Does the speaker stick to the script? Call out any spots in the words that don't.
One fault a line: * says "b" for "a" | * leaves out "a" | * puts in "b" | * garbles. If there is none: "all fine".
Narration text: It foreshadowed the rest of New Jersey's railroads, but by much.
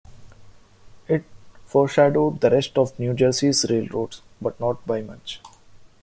* puts in "not"